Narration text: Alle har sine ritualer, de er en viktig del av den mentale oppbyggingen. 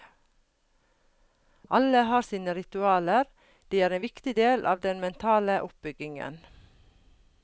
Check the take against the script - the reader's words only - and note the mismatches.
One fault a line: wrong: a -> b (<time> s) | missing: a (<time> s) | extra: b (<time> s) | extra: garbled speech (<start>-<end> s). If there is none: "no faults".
no faults